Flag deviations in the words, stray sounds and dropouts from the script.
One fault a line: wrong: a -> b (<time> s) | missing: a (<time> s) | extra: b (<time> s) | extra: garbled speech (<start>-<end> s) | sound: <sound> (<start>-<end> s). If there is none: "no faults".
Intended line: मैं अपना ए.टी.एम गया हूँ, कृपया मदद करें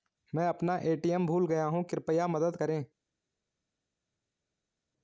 extra: भूल (1.3 s)